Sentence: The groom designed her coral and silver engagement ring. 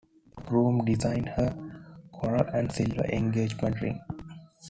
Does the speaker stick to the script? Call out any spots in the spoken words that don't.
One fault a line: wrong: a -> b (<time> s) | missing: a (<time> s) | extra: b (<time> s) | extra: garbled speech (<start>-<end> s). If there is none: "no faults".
no faults